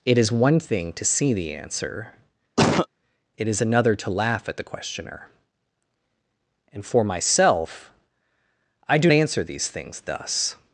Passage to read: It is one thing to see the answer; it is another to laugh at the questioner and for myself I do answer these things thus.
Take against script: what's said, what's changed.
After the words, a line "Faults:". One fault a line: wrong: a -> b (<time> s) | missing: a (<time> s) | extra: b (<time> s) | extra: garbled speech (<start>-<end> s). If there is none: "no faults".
It is one thing to see the answer; it is another to laugh at the questioner and for myself I do answer these things thus.
Faults:
no faults